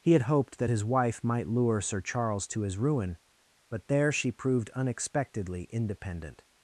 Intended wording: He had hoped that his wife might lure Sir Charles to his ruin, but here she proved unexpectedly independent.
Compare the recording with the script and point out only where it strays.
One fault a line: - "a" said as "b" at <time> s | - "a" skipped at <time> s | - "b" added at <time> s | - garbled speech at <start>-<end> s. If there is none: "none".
- "here" said as "there" at 3.9 s